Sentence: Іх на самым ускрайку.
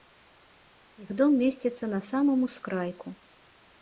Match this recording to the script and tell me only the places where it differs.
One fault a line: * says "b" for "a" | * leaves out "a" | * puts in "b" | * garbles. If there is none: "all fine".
* puts in "дом месціцца"